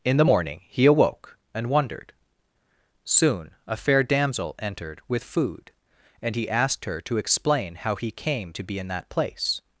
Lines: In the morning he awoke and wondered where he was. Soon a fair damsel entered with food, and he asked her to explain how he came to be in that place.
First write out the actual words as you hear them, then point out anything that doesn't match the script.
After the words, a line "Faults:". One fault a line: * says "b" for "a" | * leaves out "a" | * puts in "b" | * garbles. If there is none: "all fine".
In the morning he awoke and wondered. Soon a fair damsel entered with food, and he asked her to explain how he came to be in that place.
Faults:
* leaves out "where he was"